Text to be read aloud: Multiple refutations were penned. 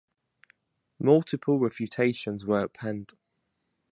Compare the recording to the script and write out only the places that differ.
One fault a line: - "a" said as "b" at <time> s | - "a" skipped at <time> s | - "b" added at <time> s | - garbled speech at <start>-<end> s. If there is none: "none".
none